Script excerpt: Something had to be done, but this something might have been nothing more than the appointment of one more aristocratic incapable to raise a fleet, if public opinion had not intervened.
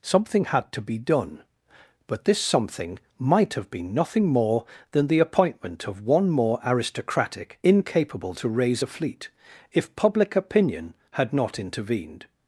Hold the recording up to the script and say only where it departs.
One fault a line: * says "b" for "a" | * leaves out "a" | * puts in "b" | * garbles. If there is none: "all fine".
all fine